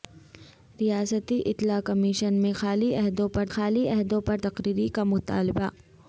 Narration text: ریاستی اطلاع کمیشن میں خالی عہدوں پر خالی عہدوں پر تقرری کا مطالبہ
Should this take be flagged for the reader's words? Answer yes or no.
no